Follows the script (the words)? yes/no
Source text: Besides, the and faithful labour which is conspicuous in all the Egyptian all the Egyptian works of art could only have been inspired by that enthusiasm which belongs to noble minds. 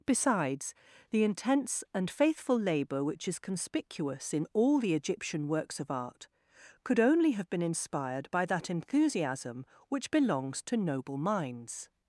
no